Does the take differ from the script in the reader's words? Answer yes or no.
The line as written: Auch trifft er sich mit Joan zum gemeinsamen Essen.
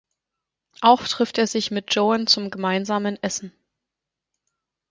no